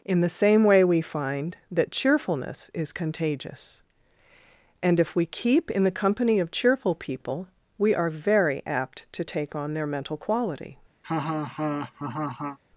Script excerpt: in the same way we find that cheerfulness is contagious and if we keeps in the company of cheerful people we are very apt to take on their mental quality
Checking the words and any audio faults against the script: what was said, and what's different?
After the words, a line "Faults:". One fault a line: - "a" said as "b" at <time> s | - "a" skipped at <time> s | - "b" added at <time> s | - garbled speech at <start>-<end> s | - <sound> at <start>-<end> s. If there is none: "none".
in the same way we find that cheerfulness is contagious and if we keep in the company of cheerful people we are very apt to take on their mental quality
Faults:
- "keeps" said as "keep" at 5.3 s
- laugh at 11.0-12.6 s